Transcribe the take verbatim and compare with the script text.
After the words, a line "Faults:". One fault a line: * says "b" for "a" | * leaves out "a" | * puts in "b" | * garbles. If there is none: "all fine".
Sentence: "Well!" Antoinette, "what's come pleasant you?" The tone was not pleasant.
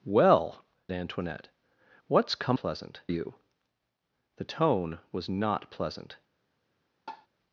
"Well!" Antoinette, "what's come pleasant you?" The tone was not pleasant.
Faults:
all fine